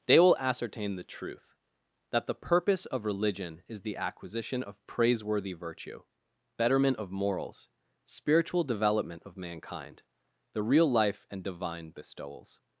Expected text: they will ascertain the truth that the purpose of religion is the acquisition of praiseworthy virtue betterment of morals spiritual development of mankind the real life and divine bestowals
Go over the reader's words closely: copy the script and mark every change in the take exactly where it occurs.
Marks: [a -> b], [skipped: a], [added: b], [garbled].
they will ascertain the truth that the purpose of religion is the acquisition of praiseworthy virtue betterment of morals spiritual development of mankind the real life and divine bestowals